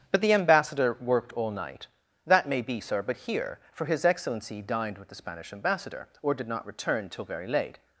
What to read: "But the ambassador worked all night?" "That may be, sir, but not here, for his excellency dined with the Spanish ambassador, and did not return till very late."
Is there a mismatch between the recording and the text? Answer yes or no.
yes